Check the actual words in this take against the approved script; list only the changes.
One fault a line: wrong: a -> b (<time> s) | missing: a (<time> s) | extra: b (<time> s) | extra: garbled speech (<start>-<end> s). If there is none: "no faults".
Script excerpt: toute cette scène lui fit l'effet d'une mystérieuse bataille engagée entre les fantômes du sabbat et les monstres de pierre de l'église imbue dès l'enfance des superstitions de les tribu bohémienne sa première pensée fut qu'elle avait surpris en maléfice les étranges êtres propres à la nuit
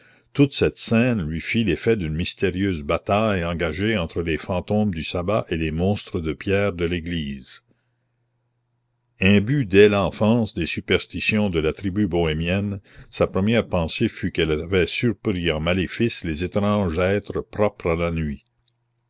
wrong: les -> la (11.6 s)